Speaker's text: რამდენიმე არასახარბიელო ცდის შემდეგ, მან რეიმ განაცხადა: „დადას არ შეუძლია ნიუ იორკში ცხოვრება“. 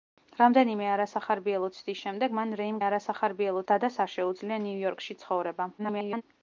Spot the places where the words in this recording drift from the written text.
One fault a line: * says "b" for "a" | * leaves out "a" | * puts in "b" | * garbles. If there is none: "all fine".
* says "არასახარბიელო" for "განაცხადა"
* garbles